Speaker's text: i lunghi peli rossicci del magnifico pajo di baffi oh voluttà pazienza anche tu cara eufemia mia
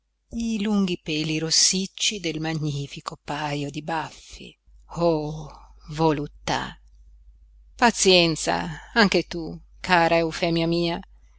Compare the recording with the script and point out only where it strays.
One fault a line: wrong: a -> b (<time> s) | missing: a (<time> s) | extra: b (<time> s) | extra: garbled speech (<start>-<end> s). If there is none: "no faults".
no faults